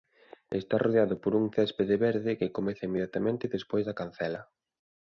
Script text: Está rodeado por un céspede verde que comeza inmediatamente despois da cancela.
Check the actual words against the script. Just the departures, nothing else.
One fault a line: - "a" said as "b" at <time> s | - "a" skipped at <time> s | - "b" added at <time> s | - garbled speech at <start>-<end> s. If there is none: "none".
none